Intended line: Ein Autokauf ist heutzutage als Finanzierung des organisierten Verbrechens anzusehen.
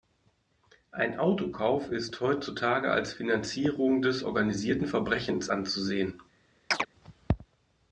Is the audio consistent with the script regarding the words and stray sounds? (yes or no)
no